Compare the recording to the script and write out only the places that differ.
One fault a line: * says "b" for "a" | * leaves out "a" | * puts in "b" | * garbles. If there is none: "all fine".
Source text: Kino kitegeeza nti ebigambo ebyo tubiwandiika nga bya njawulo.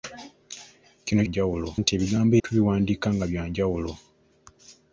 * says "njawulo" for "kitegeeza"
* leaves out "ebyo"